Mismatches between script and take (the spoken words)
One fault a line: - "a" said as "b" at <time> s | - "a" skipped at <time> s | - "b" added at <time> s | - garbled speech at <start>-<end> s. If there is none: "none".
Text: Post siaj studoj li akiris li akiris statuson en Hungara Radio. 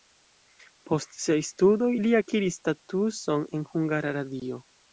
- "li akiris" skipped at 2.6 s